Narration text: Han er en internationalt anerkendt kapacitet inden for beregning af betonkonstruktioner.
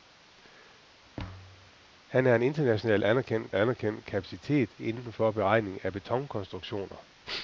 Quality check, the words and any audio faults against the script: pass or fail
fail